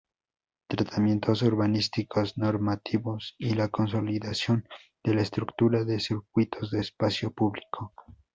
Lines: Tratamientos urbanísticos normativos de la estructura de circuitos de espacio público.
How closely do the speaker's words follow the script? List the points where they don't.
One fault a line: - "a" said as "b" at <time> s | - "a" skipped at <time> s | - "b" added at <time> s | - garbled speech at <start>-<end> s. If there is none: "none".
- "y la consolidación" added at 3.4 s